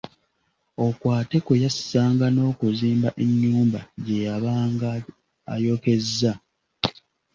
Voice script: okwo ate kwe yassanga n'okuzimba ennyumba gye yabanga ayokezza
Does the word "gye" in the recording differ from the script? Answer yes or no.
no